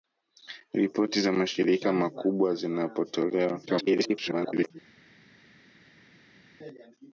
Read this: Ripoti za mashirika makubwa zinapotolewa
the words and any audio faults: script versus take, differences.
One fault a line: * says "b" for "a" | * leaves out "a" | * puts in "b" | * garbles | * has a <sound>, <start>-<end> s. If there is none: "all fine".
* garbles